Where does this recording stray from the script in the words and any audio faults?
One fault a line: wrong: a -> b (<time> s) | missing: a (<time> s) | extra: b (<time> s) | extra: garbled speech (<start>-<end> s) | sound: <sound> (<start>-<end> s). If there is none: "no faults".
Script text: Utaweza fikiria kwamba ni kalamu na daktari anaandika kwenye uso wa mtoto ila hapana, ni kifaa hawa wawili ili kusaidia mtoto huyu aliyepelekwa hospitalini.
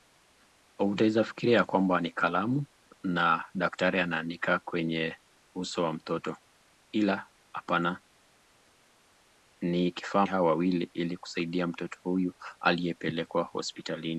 no faults